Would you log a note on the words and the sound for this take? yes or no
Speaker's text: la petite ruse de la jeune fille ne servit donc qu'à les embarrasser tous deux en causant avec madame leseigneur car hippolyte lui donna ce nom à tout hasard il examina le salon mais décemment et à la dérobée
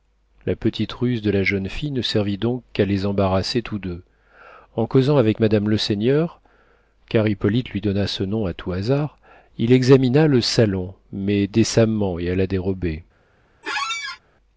yes